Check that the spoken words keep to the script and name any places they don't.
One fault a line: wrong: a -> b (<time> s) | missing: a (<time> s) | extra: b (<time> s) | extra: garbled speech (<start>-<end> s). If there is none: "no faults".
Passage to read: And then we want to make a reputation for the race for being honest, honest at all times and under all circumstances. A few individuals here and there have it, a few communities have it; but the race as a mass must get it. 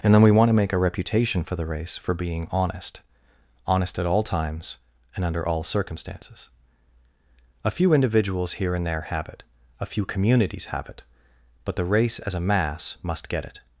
no faults